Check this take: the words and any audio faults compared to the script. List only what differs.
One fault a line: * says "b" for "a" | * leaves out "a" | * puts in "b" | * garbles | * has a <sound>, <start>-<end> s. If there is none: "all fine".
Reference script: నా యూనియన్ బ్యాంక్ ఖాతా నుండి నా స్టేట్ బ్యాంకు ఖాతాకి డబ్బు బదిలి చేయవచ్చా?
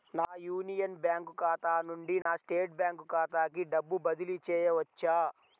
* has a dropout, 2.2-2.3 s